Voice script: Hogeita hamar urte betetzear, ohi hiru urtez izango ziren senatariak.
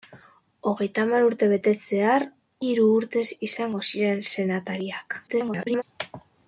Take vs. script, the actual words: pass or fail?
fail